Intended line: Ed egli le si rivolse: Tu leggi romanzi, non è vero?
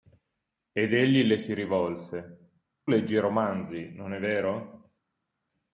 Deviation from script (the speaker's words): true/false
true